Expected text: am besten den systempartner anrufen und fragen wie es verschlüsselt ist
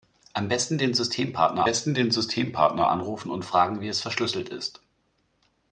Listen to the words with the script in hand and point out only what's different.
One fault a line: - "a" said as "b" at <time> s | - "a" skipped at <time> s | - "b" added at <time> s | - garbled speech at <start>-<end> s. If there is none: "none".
- "besten den systempartner" added at 1.6 s